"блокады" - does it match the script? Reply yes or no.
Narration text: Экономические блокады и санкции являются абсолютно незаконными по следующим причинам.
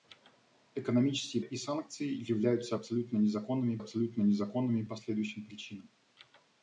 no